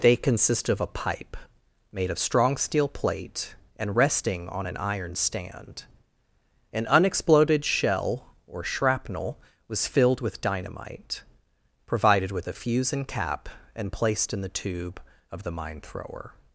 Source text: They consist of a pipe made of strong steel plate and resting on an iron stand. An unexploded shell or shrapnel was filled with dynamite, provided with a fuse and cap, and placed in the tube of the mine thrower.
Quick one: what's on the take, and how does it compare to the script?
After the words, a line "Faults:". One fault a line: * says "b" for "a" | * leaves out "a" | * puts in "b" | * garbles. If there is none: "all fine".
They consist of a pipe made of strong steel plate and resting on an iron stand. An unexploded shell or shrapnel was filled with dynamite, provided with a fuse and cap, and placed in the tube of the mine thrower.
Faults:
all fine